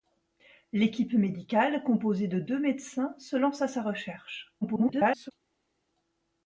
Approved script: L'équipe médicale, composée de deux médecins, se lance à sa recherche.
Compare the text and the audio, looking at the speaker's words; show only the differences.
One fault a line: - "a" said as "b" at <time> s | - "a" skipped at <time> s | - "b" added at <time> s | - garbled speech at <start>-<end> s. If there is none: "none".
- garbled speech at 4.6-5.3 s